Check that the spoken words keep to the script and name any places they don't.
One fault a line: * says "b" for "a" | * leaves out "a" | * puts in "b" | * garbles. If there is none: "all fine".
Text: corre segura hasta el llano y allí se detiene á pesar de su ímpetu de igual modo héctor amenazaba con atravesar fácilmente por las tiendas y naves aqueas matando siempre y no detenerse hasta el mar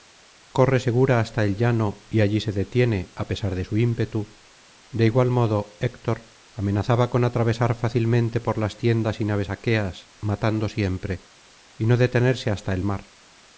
all fine